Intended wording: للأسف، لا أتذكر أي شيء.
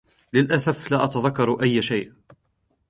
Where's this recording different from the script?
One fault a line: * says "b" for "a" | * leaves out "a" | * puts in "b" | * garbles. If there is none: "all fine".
all fine